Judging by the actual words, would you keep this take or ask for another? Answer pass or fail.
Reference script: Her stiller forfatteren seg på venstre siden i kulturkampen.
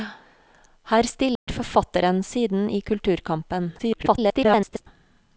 fail